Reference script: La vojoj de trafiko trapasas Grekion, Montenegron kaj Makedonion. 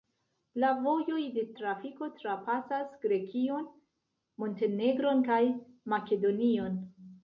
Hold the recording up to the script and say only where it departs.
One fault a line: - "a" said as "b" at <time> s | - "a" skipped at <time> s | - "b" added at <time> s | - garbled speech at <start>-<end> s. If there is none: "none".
none